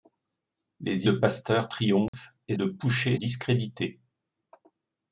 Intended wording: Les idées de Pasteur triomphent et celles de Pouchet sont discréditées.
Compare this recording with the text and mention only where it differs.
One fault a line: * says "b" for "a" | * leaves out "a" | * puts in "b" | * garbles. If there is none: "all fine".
* leaves out "idées"
* leaves out "celles"
* leaves out "sont"